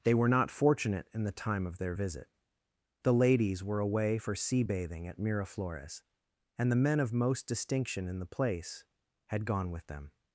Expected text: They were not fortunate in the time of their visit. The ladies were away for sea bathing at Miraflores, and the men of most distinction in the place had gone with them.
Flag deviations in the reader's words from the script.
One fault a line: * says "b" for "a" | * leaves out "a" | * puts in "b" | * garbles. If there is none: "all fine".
all fine